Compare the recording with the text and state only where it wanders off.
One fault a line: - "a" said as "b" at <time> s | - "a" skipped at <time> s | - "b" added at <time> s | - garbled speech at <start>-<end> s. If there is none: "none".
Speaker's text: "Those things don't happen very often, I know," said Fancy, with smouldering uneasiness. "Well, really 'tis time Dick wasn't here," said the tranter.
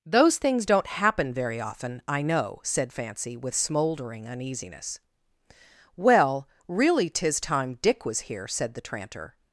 - "wasn't" said as "was" at 8.0 s